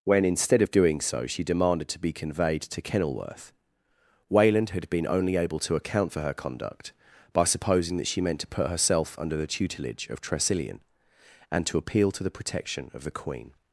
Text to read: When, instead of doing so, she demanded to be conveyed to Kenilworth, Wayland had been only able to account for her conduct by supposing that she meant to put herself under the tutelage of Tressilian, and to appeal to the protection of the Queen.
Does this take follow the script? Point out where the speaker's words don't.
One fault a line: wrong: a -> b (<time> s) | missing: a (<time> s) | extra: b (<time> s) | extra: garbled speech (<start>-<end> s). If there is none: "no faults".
no faults